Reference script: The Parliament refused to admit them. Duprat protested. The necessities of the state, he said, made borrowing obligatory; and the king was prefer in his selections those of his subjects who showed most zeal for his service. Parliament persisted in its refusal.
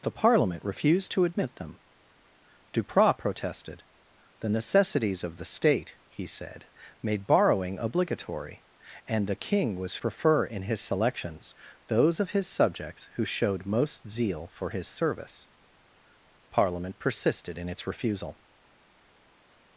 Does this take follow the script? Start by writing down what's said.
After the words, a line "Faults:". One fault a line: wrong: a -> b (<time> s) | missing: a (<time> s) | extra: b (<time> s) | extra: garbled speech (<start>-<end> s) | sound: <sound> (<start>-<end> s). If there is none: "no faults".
The Parliament refused to admit them. Duprat protested. The necessities of the state, he said, made borrowing obligatory; and the king was prefer in his selections those of his subjects who showed most zeal for his service. Parliament persisted in its refusal.
Faults:
no faults